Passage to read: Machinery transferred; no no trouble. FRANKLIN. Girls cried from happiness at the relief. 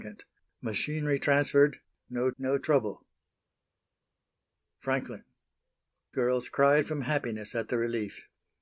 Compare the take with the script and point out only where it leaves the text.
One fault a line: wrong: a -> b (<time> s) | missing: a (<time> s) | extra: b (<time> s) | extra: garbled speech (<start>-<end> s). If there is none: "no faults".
no faults